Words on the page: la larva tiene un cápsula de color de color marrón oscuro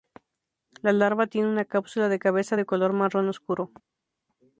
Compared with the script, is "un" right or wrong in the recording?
wrong